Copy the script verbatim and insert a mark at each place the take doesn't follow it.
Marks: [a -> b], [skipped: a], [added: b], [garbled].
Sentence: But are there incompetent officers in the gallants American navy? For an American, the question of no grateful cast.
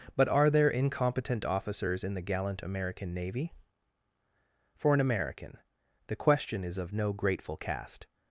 But are there incompetent officers in the [gallants -> gallant] American navy? For an American, the question [added: is] of no grateful cast.